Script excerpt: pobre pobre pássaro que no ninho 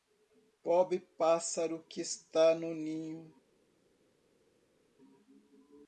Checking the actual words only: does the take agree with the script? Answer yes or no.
no